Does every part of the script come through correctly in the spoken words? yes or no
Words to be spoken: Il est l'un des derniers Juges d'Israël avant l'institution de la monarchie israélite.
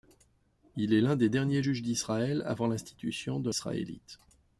no